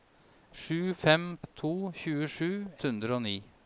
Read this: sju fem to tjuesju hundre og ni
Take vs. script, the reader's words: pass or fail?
pass